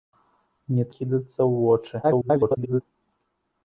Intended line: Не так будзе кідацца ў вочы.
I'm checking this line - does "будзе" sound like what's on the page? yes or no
no